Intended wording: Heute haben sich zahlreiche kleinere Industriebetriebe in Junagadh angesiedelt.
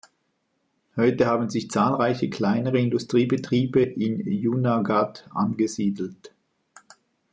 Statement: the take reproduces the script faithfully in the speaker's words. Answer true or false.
true